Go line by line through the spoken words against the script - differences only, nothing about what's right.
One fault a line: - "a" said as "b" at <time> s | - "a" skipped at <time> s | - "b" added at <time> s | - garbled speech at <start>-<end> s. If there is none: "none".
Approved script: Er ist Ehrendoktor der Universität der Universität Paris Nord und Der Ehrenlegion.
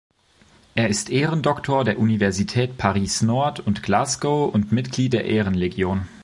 - "der Universität" skipped at 2.8 s
- "Glasgow und Mitglied" added at 3.8 s